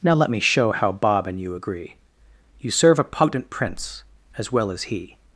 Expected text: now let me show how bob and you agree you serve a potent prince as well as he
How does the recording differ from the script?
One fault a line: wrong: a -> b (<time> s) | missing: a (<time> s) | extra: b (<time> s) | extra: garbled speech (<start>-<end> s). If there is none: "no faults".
no faults